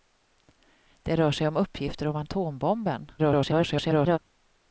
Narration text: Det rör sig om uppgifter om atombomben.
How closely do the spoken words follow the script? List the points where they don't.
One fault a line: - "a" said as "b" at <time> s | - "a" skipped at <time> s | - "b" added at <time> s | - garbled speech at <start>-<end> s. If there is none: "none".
- garbled speech at 3.2-4.2 s